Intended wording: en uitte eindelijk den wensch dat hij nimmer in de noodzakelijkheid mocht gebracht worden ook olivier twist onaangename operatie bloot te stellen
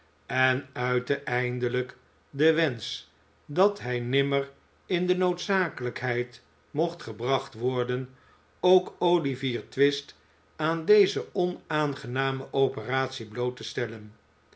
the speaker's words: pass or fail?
fail